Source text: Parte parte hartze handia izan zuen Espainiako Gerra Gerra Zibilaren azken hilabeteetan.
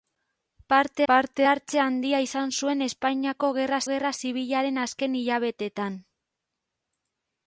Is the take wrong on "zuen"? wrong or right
right